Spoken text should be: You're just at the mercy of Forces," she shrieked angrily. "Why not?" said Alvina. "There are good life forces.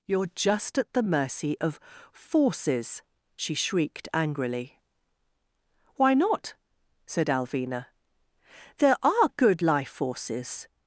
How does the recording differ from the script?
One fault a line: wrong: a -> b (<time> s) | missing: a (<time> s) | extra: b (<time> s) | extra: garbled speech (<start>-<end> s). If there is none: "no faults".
no faults